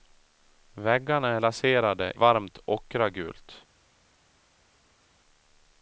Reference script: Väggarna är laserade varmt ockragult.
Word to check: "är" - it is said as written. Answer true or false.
true